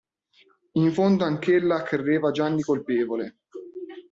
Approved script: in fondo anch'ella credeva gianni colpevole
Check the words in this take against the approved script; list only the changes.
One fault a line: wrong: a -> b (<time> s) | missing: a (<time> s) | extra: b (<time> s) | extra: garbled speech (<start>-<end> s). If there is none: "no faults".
no faults